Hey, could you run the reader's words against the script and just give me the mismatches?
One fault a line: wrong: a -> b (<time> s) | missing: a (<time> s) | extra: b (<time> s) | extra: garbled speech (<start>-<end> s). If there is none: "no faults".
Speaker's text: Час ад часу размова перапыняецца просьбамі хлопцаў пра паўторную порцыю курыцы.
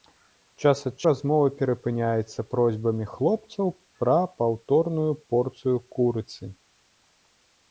missing: часу (0.9 s)